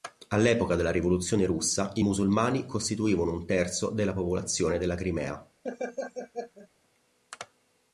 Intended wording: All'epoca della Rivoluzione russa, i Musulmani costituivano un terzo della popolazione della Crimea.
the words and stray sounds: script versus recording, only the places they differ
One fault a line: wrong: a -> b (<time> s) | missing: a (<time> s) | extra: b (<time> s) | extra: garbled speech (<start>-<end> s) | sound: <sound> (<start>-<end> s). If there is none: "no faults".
sound: laugh (5.6-6.7 s)